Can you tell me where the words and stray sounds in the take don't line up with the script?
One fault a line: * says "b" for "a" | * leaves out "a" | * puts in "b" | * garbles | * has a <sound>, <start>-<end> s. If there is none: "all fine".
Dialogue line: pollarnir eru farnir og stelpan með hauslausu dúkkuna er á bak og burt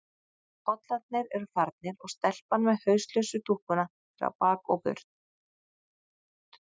all fine